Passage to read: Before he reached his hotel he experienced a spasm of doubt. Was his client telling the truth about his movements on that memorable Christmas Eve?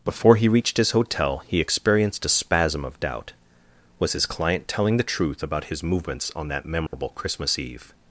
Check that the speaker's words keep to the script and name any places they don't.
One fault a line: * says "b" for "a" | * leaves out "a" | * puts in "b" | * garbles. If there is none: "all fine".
all fine